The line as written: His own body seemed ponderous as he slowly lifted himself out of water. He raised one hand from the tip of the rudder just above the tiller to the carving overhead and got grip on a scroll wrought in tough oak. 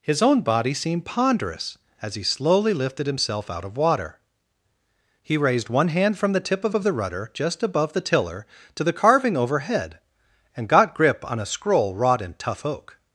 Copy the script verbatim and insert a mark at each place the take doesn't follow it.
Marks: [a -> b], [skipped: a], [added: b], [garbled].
His own body seemed ponderous as he slowly lifted himself out of water. He raised one hand from the tip of [added: of] the rudder just above the tiller to the carving overhead and got grip on a scroll wrought in tough oak.